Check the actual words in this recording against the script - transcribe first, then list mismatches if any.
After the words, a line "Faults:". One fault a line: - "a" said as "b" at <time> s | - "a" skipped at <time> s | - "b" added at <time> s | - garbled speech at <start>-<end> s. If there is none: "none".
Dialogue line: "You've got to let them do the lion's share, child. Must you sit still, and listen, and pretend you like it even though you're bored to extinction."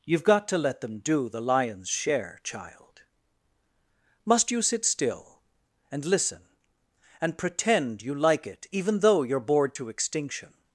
"You've got to let them do the lion's share, child. Must you sit still, and listen, and pretend you like it even though you're bored to extinction."
Faults:
none